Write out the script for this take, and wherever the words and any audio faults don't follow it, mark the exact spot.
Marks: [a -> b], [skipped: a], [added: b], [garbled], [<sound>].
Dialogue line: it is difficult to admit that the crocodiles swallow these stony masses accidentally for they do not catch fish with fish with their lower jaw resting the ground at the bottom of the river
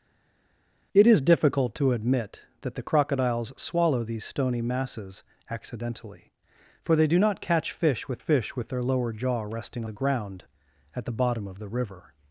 it is difficult to admit that the crocodiles swallow these stony masses accidentally for they do not catch fish with fish with their lower jaw resting the ground at the bottom of the river